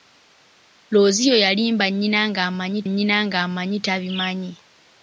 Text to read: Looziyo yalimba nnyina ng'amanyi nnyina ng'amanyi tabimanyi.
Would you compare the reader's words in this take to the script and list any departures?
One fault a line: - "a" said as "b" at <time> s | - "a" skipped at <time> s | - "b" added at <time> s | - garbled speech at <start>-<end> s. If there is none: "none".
none